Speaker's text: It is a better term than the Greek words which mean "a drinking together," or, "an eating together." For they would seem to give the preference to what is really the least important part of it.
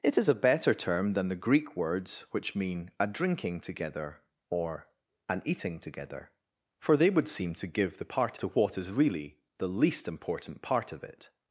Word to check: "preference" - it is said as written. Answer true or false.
false